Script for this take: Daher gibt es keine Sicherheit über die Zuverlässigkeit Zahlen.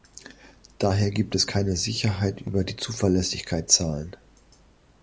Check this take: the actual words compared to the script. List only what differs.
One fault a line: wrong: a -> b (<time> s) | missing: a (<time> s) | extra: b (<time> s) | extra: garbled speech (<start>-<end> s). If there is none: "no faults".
no faults